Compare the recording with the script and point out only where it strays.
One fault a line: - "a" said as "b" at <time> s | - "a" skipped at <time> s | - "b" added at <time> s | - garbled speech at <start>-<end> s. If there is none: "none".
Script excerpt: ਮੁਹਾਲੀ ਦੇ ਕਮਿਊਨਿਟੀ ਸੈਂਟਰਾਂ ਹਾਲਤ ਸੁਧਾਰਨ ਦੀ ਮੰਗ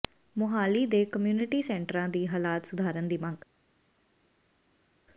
- "ਦੀ" added at 2.1 s